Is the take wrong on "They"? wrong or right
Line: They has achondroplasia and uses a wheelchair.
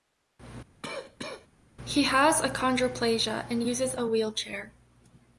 wrong